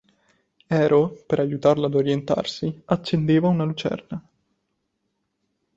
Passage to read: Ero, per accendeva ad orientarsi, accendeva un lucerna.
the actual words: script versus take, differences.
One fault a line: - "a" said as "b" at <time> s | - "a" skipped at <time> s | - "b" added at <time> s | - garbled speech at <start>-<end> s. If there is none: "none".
- "accendeva" said as "aiutarlo" at 1.4 s
- "un" said as "una" at 3.5 s